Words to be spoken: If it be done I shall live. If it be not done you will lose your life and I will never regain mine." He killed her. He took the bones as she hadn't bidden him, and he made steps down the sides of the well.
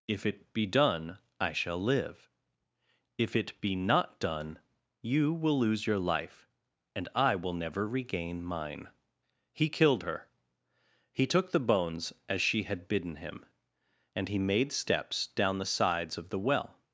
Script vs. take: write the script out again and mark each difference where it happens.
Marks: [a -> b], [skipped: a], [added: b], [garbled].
If it be done I shall live. If it be not done you will lose your life and I will never regain mine." He killed her. He took the bones as she [hadn't -> had] bidden him, and he made steps down the sides of the well.